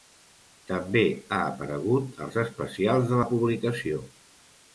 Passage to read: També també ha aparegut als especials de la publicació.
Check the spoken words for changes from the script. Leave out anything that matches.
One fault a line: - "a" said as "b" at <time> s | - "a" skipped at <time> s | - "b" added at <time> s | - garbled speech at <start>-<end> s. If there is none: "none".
- "també" skipped at 1.0 s